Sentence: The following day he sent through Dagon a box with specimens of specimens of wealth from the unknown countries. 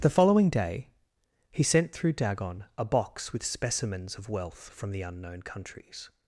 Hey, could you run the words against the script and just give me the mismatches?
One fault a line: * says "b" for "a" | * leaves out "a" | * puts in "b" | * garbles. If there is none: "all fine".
* leaves out "specimens of"